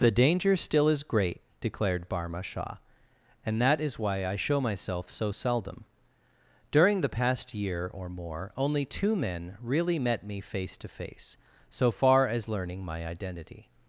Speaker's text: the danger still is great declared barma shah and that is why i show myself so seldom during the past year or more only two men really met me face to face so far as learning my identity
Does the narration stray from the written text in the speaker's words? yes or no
no